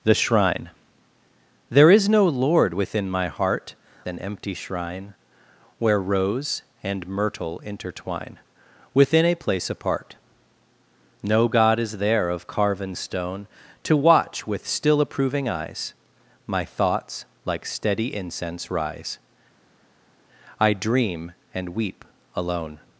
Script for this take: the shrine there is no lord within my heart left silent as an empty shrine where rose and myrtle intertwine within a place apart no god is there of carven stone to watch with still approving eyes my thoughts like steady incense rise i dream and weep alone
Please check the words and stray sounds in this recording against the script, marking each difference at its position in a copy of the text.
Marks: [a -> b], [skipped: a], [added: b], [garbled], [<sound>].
the shrine there is no lord within my heart [skipped: left silent as] an empty shrine where rose and myrtle intertwine within a place apart no god is there of carven stone to watch with still approving eyes my thoughts like steady incense rise i dream and weep alone